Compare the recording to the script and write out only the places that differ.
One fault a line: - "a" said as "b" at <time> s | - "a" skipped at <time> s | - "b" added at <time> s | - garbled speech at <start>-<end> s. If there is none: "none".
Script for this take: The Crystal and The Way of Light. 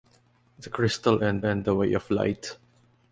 - "and" added at 1.4 s